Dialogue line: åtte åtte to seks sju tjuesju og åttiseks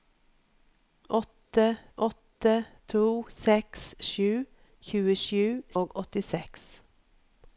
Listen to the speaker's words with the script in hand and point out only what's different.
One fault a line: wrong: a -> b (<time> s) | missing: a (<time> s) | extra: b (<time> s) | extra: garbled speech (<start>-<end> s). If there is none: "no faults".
no faults